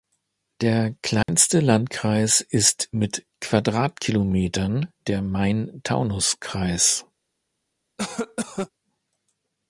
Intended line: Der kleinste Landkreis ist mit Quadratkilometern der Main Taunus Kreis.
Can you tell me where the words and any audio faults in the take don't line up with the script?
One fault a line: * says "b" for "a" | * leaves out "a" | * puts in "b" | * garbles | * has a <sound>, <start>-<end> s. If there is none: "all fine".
* has a dropout, 1.2-1.3 s
* has a cough, 8.0-8.7 s